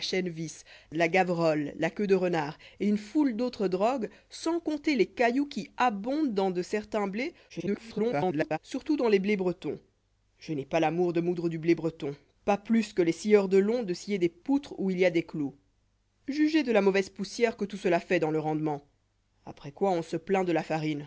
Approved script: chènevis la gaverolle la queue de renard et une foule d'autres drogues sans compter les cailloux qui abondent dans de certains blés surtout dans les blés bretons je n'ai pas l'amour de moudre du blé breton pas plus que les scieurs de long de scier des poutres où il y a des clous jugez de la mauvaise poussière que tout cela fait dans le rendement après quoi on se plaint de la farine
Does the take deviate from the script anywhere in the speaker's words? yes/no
yes